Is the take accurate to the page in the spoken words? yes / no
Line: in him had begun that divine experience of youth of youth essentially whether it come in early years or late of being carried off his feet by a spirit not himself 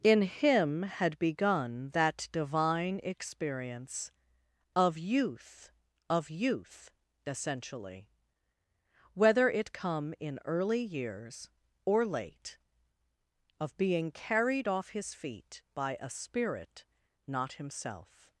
yes